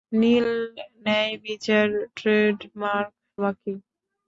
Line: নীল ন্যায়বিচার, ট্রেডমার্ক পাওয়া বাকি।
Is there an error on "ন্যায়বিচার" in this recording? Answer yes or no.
no